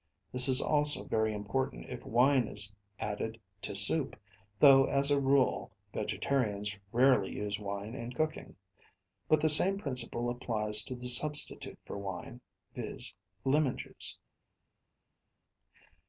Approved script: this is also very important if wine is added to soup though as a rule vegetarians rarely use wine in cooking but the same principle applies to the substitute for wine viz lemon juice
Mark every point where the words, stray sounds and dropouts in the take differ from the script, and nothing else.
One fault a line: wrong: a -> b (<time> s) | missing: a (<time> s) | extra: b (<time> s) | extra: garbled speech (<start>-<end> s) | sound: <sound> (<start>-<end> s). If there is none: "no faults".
no faults